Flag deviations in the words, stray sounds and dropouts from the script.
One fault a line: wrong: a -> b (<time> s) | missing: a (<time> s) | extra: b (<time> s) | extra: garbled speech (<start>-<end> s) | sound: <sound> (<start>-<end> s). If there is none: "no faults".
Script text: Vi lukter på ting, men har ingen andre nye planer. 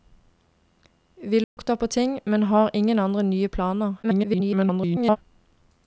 sound: dropout (1.4-1.6 s)
extra: garbled speech (4.0-5.2 s)